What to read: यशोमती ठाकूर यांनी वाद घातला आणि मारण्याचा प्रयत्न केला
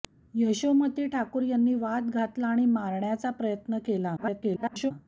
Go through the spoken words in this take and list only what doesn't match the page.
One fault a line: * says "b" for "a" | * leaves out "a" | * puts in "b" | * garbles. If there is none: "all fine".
* garbles